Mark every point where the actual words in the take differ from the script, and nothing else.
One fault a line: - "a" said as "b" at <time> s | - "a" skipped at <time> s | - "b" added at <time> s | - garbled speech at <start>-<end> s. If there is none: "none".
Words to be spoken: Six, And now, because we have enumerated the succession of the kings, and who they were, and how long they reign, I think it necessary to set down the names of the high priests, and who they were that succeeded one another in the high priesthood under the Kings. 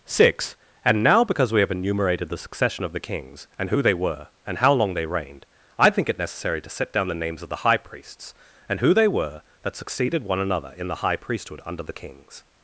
- "reign" said as "reigned" at 5.0 s